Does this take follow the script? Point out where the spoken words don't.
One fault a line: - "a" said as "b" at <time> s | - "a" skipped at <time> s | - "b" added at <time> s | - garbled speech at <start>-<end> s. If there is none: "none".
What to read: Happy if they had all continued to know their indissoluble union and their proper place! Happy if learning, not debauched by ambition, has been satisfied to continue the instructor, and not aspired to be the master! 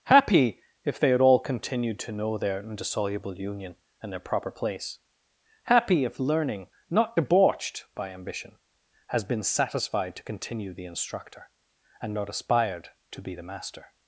none